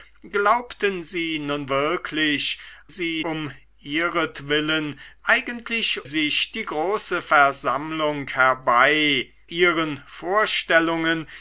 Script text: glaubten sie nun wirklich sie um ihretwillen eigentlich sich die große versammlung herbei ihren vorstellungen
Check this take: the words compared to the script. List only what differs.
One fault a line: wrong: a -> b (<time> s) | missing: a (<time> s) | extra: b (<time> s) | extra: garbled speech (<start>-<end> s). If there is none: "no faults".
no faults